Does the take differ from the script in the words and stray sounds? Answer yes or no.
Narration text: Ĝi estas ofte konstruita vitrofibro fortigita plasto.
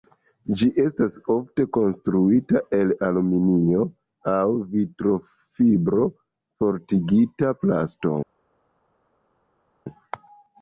yes